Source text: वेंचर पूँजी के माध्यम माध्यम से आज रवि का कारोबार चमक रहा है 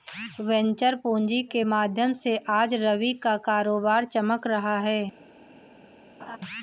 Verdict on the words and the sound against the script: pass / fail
fail